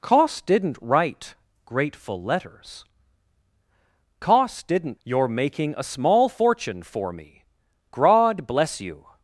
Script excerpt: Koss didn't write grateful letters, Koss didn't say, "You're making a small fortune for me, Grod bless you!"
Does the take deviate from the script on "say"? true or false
true